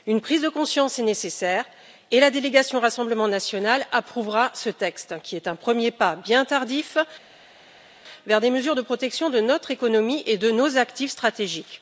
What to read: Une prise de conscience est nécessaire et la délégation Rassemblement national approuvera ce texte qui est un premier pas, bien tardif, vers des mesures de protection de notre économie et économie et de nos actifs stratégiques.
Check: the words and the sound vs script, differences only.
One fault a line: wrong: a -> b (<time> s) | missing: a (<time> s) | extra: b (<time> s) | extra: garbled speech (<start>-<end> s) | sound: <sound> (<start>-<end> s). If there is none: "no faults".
missing: économie et (10.4 s)